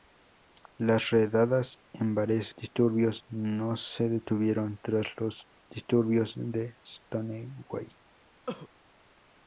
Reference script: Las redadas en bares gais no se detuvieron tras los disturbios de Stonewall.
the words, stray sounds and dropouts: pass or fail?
fail